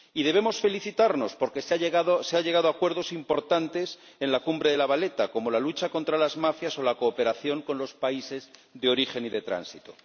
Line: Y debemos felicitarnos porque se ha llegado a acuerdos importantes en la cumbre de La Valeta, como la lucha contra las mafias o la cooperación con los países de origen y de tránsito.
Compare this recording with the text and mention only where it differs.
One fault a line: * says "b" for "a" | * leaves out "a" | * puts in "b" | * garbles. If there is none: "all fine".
all fine